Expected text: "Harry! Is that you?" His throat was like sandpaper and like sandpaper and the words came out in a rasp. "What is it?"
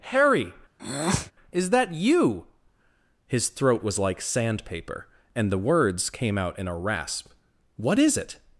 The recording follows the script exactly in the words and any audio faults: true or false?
false